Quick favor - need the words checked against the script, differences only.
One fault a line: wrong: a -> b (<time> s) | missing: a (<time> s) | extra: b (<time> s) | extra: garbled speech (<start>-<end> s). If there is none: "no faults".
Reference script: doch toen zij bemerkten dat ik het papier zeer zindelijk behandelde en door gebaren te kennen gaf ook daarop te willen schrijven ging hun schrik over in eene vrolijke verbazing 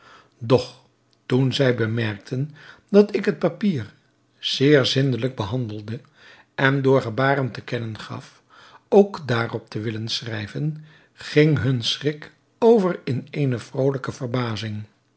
no faults